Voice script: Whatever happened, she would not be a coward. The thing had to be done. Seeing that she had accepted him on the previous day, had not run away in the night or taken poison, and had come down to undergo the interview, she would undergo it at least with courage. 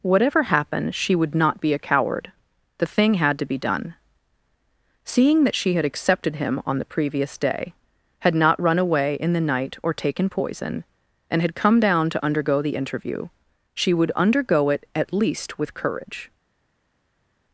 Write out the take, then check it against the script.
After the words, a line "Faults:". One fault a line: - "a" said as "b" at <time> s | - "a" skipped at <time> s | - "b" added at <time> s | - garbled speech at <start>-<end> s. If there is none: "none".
Whatever happened, she would not be a coward. The thing had to be done. Seeing that she had accepted him on the previous day, had not run away in the night or taken poison, and had come down to undergo the interview, she would undergo it at least with courage.
Faults:
none